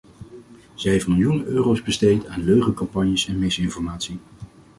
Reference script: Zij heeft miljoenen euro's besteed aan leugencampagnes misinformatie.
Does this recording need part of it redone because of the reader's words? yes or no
yes